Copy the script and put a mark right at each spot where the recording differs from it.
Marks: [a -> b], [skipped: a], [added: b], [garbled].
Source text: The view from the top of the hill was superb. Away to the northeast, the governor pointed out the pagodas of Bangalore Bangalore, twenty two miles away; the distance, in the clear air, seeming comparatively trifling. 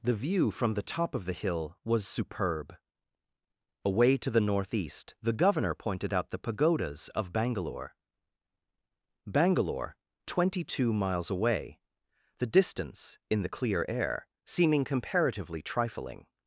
The view from the top of the hill was superb. Away to the northeast, the governor pointed out the pagodas of Bangalore Bangalore, twenty two miles away; the distance, in the clear air, seeming comparatively trifling.